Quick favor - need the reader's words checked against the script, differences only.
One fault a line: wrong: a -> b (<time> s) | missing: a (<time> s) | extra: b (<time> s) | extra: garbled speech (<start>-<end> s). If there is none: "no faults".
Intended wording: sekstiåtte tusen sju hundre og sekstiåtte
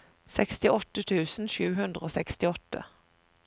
no faults